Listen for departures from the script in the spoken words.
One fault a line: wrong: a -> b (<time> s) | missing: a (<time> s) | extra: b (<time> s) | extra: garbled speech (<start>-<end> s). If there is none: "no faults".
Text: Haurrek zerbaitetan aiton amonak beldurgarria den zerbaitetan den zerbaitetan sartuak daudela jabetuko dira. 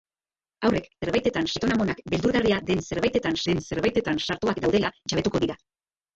no faults